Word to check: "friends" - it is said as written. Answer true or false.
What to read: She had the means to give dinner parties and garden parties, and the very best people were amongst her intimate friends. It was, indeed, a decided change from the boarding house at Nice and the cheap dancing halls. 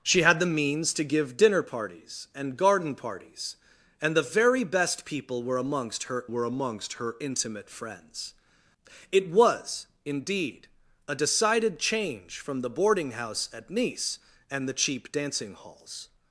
true